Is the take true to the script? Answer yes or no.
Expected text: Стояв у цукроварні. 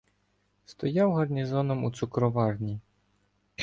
no